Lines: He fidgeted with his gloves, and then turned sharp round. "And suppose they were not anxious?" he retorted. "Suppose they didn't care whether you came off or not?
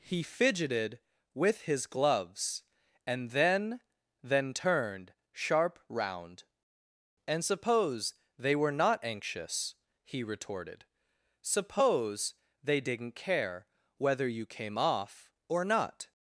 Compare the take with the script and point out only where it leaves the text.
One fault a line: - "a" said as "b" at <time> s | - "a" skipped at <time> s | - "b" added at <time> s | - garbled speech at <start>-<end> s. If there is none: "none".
- "then" added at 4.2 s